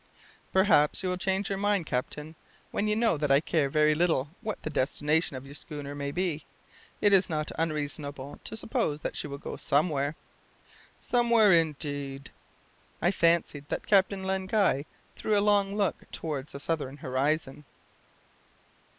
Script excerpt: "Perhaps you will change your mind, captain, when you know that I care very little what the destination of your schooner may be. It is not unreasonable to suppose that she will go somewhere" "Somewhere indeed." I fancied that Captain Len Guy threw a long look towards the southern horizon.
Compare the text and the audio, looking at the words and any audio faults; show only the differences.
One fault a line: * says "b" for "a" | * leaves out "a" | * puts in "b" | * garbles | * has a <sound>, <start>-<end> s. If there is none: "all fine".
all fine